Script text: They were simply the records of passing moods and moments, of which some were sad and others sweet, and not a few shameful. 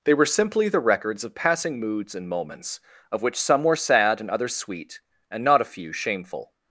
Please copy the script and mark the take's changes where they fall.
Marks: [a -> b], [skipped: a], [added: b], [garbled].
They were simply the records of passing moods and moments, of which some were sad and others sweet, and not a few shameful.